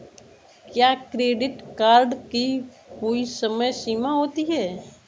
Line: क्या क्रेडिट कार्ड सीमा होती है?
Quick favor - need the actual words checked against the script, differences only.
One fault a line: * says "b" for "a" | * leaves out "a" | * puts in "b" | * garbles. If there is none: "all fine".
* puts in "की कोई समय"